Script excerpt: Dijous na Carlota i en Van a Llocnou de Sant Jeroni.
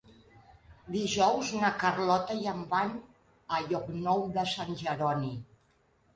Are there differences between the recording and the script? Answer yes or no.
no